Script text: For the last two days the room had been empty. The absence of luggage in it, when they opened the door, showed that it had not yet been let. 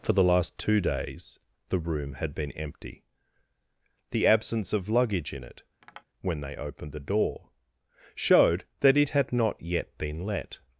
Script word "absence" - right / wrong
right